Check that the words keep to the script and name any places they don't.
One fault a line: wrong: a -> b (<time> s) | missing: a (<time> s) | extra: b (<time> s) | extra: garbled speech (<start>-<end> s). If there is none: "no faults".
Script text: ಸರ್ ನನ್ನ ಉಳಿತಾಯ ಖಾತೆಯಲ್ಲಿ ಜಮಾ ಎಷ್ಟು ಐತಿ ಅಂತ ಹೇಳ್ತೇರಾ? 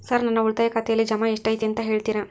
no faults